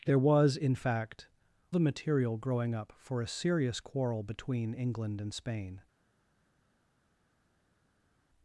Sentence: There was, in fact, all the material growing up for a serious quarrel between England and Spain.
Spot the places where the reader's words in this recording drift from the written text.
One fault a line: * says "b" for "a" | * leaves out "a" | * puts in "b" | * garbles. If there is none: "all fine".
* leaves out "all"